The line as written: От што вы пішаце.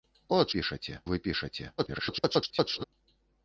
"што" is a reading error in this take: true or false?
true